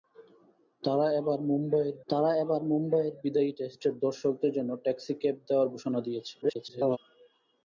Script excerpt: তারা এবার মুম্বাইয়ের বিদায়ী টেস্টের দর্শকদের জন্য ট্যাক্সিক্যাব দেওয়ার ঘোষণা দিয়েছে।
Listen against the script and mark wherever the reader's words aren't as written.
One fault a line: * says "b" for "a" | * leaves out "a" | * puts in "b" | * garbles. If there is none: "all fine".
* puts in "তারা এবার মুম্বাইয়ের"
* garbles